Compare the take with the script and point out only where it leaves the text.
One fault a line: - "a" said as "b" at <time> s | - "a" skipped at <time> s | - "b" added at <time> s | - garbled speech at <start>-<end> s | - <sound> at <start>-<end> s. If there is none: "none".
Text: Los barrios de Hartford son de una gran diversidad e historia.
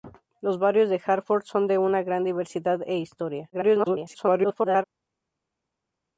- garbled speech at 3.5-4.8 s